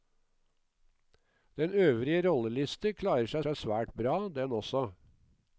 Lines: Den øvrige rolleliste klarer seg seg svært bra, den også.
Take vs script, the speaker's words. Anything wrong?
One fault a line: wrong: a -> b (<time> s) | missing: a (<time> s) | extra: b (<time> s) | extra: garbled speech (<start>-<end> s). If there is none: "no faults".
no faults